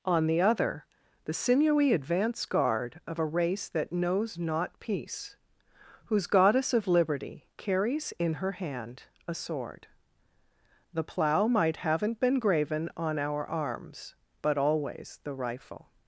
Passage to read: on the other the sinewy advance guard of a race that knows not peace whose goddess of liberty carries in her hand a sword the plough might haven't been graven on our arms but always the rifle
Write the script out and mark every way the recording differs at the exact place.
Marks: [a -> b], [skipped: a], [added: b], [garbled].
on the other the sinewy advance guard of a race that knows not peace whose goddess of liberty carries in her hand a sword the plough might haven't been graven on our arms but always the rifle